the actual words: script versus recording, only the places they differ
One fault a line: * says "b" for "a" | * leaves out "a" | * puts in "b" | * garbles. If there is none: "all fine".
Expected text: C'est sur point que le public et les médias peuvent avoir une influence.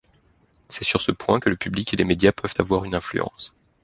* puts in "ce"